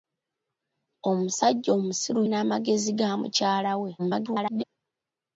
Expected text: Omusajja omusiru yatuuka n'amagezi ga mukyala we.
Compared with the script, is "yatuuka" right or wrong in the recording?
wrong